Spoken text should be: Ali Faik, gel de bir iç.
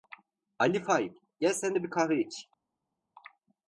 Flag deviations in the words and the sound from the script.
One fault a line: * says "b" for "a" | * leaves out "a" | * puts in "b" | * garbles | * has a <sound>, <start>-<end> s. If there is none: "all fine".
* puts in "sen"
* puts in "kahve"